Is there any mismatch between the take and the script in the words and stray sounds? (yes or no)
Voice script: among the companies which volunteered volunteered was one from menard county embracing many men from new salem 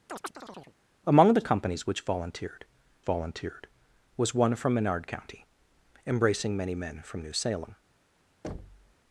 yes